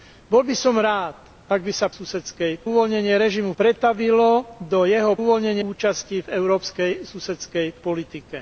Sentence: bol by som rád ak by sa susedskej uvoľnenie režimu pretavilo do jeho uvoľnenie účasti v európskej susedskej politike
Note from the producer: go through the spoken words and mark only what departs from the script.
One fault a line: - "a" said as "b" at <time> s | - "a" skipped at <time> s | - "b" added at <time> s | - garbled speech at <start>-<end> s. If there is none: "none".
none